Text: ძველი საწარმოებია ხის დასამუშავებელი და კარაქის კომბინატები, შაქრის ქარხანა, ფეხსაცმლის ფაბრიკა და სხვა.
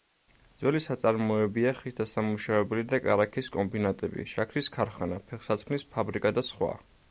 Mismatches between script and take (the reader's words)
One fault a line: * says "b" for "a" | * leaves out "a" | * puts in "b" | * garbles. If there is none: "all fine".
all fine